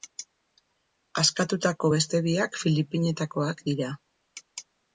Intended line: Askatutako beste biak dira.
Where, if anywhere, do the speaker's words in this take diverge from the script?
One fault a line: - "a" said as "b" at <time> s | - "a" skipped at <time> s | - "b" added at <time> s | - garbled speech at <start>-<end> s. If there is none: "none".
- "filipinetakoak" added at 2.6 s